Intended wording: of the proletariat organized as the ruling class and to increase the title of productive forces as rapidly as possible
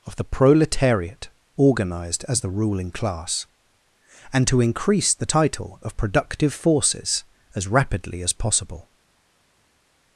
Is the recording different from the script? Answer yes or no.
no